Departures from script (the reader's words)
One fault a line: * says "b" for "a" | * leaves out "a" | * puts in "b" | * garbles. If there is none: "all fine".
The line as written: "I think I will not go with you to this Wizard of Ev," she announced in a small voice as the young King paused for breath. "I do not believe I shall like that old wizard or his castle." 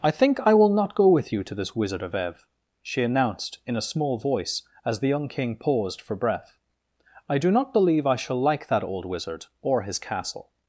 all fine